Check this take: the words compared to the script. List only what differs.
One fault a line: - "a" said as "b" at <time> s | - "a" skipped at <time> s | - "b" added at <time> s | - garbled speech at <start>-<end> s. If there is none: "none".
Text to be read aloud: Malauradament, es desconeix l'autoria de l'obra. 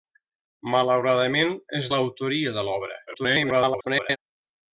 - "desconeix" skipped at 1.9 s
- garbled speech at 3.1-4.2 s